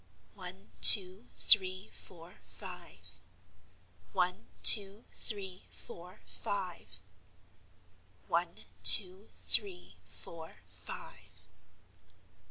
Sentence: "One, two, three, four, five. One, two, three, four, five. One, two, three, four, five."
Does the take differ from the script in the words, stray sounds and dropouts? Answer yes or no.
no